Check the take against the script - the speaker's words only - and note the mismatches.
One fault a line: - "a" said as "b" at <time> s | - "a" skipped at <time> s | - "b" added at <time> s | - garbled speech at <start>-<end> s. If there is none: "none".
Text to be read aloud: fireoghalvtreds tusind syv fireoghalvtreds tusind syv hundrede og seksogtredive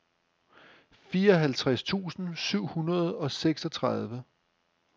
- "fireoghalvtreds tusind syv" skipped at 2.7 s